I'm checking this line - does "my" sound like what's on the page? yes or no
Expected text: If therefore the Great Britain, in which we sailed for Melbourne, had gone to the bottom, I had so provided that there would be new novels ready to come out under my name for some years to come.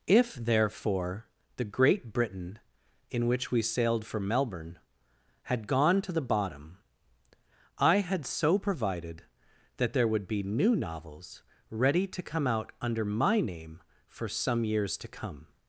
yes